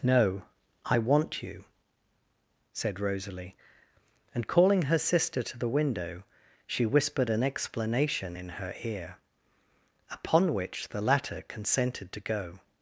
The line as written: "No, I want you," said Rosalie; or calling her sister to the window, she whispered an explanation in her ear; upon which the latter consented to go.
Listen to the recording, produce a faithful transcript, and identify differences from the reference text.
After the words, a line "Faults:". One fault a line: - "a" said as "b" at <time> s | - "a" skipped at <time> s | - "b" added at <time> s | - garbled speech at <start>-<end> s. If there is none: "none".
"No, I want you," said Rosalie; and calling her sister to the window, she whispered an explanation in her ear; upon which the latter consented to go.
Faults:
- "or" said as "and" at 4.3 s